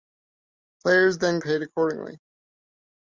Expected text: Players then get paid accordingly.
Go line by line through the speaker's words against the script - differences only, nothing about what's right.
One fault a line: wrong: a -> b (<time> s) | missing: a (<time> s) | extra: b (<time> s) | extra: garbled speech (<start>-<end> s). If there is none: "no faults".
missing: get (1.4 s)